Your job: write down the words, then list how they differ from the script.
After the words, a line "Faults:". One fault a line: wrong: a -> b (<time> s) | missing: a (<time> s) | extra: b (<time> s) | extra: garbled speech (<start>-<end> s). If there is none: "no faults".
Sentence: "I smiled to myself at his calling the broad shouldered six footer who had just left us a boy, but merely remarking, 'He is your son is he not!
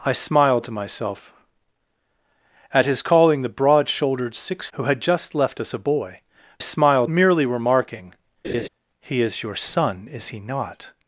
"I smiled to myself at his calling the broad shouldered six who had just left us a boy, smiled merely remarking, 'He is your son is he not!
Faults:
missing: footer (4.7 s)
wrong: but -> smiled (6.6 s)